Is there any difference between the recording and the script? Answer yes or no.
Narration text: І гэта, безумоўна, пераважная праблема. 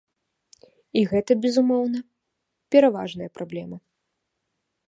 no